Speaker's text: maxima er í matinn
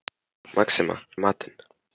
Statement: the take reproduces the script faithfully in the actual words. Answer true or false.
true